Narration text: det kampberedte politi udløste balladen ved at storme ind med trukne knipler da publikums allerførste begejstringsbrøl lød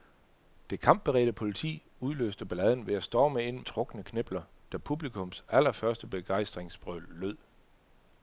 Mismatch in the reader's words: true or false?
true